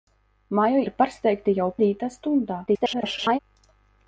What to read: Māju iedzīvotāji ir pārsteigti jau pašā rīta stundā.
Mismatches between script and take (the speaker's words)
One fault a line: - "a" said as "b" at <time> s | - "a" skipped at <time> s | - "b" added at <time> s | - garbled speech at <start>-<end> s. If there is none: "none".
- "iedzīvotāji" skipped at 0.8 s
- "pašā" skipped at 1.7 s
- garbled speech at 2.7-3.4 s